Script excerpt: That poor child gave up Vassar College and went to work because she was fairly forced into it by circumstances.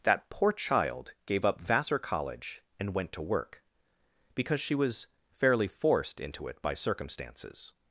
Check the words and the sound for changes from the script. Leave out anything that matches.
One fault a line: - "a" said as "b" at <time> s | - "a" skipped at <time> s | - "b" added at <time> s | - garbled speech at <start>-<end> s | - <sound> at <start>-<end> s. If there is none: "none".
none